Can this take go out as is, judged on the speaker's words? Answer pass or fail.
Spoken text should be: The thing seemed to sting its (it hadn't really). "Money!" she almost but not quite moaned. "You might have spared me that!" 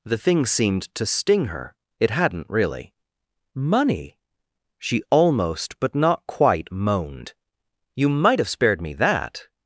fail